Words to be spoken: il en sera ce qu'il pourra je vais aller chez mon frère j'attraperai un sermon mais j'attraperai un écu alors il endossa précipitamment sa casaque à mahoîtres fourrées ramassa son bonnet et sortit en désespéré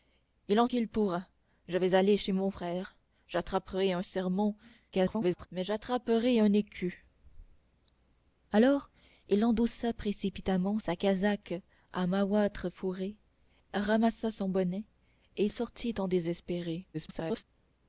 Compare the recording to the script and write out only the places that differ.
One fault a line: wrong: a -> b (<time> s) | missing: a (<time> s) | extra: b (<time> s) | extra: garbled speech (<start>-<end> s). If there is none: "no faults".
missing: sera ce (0.7 s)
extra: garbled speech (4.9-5.5 s)
extra: garbled speech (16.9-17.4 s)